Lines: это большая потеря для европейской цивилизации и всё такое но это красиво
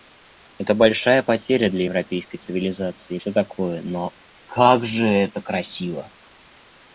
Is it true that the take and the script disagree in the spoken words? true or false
true